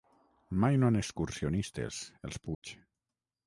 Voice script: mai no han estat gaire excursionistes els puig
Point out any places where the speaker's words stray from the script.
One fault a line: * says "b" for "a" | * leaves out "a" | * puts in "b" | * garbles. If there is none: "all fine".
* leaves out "estat gaire"